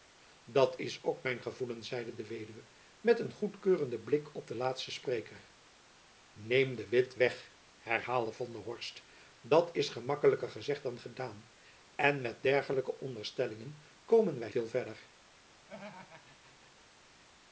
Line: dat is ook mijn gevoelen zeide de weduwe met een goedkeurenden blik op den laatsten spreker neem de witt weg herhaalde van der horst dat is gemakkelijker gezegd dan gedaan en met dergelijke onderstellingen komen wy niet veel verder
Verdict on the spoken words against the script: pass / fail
fail